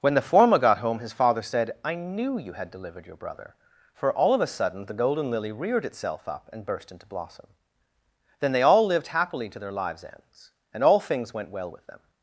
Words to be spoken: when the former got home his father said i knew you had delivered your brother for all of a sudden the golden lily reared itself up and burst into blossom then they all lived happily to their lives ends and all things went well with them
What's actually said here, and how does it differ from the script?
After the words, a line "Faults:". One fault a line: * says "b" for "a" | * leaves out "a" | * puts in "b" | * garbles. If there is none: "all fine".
when the former got home his father said i knew you had delivered your brother for all of a sudden the golden lily reared itself up and burst into blossom then they all lived happily to their lives ends and all things went well with them
Faults:
all fine